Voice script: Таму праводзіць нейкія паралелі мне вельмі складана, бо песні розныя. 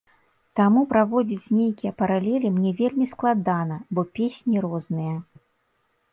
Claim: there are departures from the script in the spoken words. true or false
false